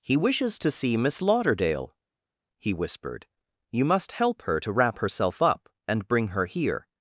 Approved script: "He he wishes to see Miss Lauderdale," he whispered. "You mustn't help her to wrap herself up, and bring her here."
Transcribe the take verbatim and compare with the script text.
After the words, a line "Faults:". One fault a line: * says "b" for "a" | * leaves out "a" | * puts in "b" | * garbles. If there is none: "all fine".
"He wishes to see Miss Lauderdale," he whispered. "You must help her to wrap herself up, and bring her here."
Faults:
* leaves out "he"
* says "must" for "mustn't"